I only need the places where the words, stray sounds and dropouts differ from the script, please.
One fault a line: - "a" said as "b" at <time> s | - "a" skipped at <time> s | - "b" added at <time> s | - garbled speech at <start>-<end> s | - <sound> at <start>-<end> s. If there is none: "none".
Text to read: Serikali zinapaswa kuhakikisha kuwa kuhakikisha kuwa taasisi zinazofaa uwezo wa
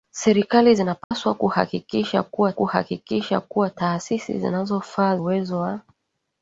- dropout at 1.0-1.1 s